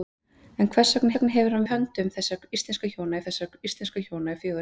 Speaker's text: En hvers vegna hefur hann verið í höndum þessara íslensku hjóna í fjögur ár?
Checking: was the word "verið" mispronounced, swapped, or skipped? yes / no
yes